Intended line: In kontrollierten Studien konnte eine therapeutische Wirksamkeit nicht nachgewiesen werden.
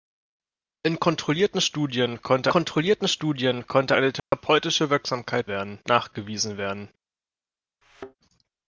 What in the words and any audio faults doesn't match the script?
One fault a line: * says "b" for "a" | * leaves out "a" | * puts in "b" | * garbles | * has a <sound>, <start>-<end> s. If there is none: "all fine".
* puts in "kontrollierten Studien konnte"
* has a dropout, 4.2-4.3 s
* says "werden" for "nicht"
* has a thud, 7.8-8.2 s